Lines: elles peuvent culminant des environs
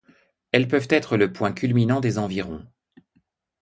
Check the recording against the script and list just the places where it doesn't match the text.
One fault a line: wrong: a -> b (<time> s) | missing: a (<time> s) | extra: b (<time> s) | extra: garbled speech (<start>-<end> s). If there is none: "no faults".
extra: être le point (0.9 s)